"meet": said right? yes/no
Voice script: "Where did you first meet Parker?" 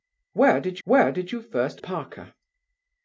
no